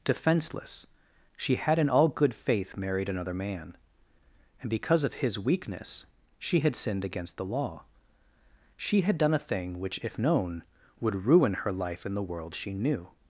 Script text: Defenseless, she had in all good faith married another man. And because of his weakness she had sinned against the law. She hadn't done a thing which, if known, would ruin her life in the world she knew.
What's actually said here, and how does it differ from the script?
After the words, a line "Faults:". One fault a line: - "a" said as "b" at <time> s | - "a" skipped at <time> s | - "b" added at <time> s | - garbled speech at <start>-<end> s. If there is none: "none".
Defenseless, she had in all good faith married another man. And because of his weakness she had sinned against the law. She had done a thing which, if known, would ruin her life in the world she knew.
Faults:
- "hadn't" said as "had" at 9.0 s